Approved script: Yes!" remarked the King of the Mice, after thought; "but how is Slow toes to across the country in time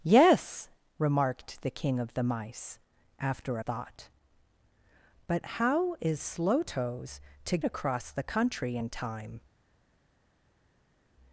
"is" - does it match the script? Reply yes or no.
yes